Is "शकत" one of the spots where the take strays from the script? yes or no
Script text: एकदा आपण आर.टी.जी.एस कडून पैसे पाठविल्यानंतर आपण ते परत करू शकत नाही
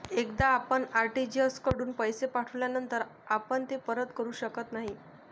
no